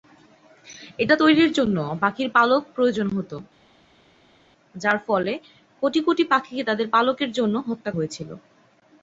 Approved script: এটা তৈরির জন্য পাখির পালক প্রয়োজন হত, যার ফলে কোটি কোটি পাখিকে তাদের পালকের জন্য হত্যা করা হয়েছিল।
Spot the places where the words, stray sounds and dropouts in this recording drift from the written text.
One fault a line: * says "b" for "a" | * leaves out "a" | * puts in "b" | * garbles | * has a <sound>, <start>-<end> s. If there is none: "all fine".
* leaves out "করা"